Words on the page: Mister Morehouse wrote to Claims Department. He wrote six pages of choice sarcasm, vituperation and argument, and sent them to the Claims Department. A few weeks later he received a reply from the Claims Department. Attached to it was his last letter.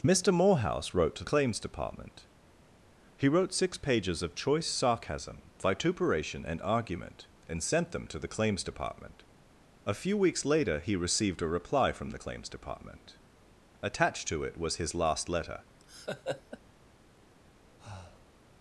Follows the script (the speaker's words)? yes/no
yes